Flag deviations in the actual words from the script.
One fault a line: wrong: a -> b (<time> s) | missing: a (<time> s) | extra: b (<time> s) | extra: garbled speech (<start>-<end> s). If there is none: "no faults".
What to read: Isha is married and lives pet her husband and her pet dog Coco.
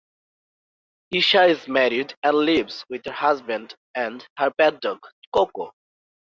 wrong: pet -> with (2.9 s)